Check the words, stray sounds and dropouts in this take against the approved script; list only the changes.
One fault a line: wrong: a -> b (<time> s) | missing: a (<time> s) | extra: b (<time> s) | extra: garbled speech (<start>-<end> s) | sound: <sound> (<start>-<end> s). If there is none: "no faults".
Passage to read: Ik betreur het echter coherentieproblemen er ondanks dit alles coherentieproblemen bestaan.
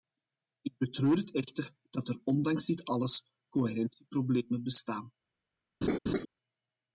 wrong: coherentieproblemen -> dat (1.9 s)
sound: laugh (5.8-6.3 s)